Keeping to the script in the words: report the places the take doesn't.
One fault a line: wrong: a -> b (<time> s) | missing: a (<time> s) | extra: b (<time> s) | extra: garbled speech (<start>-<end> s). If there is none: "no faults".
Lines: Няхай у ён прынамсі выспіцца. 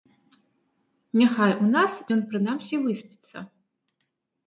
extra: нас (1.8 s)